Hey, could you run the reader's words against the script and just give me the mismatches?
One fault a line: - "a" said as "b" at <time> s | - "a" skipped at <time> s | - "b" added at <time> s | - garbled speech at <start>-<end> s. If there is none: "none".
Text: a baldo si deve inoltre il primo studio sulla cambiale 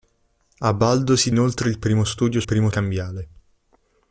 - "deve" skipped at 1.3 s
- "sulla" said as "primo" at 2.4 s